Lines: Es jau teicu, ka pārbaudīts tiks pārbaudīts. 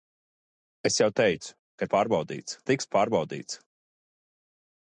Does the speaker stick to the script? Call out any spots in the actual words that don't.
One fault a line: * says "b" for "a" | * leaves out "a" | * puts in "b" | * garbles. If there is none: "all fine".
all fine